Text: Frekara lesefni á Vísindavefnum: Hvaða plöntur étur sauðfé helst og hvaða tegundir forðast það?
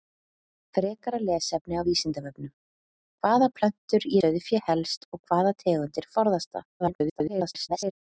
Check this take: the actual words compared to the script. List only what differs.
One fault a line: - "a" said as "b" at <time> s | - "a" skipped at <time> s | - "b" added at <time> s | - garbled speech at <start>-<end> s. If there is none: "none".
- "étur" skipped at 4.1 s
- garbled speech at 6.8-7.9 s